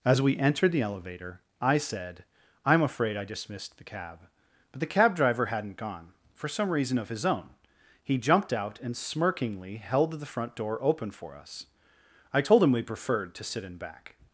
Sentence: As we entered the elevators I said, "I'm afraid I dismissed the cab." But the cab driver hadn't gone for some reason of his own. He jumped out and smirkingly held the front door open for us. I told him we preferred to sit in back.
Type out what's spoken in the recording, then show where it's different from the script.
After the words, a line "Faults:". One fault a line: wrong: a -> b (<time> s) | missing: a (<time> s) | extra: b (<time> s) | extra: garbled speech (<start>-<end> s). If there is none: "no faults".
As we entered the elevator I said, "I'm afraid I dismissed the cab." But the cab driver hadn't gone for some reason of his own. He jumped out and smirkingly held the front door open for us. I told him we preferred to sit in back.
Faults:
wrong: elevators -> elevator (0.8 s)